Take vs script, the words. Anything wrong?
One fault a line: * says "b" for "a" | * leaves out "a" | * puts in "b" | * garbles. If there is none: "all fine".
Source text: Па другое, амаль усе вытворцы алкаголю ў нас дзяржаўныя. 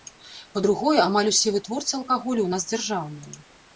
all fine